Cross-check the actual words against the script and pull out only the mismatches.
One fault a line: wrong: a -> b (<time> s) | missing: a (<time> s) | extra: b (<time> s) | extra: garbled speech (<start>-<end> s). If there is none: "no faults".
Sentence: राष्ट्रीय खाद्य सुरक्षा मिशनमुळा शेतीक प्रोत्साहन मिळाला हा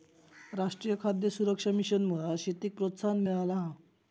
no faults